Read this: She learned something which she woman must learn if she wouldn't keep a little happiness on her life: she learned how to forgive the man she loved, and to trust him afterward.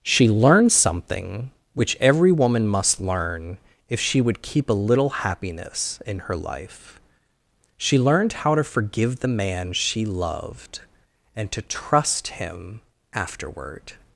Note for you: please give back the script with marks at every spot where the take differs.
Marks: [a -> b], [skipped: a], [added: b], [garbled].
She learned something which [she -> every] woman must learn if she [wouldn't -> would] keep a little happiness [on -> in] her life: she learned how to forgive the man she loved, and to trust him afterward.